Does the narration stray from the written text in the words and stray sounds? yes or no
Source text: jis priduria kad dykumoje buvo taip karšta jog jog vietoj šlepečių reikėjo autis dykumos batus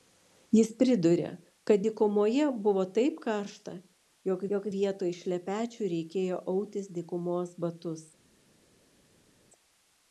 no